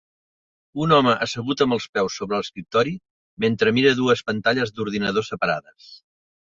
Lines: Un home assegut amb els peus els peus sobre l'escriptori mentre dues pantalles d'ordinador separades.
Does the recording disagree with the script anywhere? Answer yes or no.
yes